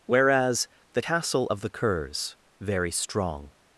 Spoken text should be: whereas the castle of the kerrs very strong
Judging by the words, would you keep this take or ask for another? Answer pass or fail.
pass